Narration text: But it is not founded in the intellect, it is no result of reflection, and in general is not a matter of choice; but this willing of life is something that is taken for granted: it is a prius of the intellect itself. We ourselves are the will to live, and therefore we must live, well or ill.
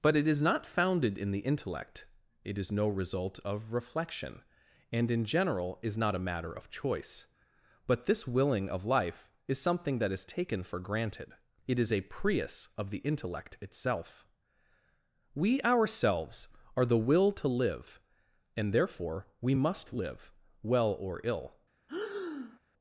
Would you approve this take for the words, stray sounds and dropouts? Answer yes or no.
no